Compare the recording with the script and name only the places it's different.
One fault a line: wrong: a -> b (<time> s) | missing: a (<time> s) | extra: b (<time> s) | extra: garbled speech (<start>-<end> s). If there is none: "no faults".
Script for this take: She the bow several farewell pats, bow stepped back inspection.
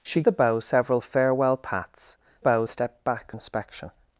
no faults